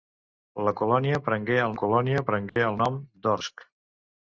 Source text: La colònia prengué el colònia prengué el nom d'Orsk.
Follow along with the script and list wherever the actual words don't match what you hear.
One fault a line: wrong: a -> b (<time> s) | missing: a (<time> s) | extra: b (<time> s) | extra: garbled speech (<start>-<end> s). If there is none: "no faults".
no faults